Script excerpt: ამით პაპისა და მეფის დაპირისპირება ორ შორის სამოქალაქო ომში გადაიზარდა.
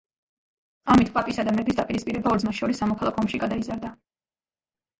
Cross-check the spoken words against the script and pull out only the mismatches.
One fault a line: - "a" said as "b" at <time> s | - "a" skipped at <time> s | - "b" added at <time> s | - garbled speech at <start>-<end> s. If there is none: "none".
- "ძმას" added at 2.5 s